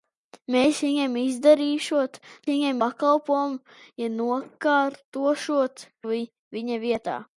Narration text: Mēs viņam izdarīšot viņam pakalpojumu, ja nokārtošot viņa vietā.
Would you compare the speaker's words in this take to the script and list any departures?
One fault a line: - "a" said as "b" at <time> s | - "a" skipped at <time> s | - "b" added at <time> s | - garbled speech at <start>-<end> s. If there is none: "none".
none